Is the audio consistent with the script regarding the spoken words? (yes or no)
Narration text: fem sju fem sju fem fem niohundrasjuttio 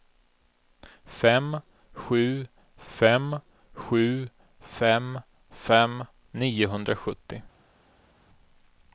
yes